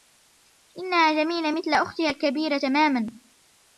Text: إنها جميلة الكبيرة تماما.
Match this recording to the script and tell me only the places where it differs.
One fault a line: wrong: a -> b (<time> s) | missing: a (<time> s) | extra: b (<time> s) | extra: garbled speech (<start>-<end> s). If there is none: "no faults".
extra: مثل أختها (1.5 s)